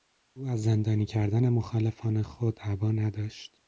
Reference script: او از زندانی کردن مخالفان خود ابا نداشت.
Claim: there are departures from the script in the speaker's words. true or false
false